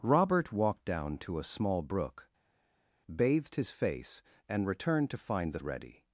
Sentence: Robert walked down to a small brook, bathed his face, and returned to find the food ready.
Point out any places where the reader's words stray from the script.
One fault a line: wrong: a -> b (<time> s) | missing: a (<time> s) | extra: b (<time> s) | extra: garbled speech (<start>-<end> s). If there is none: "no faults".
missing: food (5.6 s)